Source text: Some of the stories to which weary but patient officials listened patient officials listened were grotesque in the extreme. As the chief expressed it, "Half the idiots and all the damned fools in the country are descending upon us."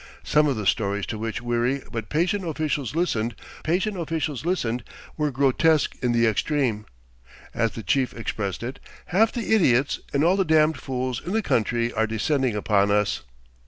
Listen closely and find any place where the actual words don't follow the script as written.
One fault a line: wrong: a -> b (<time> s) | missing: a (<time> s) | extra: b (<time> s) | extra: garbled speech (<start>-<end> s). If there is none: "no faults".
no faults